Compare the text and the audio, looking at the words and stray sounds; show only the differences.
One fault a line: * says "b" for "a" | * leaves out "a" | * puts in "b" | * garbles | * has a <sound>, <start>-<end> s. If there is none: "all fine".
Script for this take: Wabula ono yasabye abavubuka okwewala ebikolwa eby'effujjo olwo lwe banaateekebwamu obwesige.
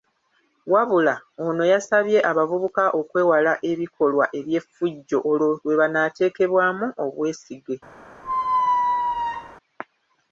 * has a squeak, 8.2-9.6 s